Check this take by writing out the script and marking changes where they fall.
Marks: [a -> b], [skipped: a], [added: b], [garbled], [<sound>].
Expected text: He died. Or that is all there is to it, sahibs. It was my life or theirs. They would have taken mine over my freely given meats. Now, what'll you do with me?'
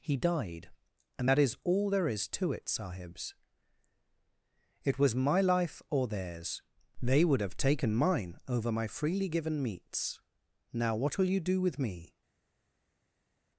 He died. [Or -> And] that is all there is to it, sahibs. It was my life or theirs. They would have taken mine over my freely given meats. Now, what'll you do with me?'